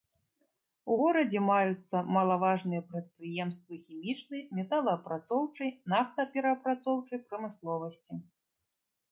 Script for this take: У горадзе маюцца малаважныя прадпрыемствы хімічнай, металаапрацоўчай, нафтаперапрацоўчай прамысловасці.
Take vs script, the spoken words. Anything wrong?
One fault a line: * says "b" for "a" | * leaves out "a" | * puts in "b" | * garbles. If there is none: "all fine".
all fine